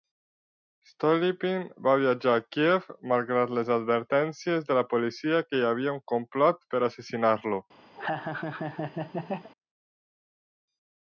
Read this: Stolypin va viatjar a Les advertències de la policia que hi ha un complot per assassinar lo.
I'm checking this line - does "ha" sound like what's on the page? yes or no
no